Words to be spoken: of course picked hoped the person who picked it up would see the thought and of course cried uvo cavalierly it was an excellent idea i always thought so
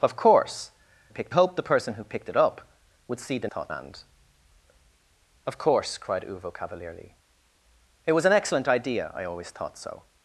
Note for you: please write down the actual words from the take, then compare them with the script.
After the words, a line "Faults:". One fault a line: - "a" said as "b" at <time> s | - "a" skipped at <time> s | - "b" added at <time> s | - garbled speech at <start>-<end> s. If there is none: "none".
of course picked hoped the person who picked it up would see the thought and of course cried uvo cavalierly it was an excellent idea i always thought so
Faults:
none